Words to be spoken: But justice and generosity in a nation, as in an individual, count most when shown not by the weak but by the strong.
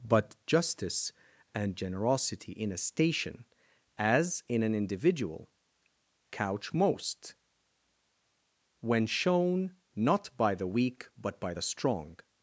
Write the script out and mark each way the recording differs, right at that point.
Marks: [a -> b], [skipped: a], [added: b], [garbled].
But justice and generosity in a [nation, -> station] as in an individual, [count -> couch] most when shown not by the weak but by the strong.